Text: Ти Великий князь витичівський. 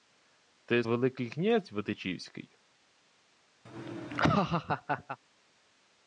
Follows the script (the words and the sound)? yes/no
no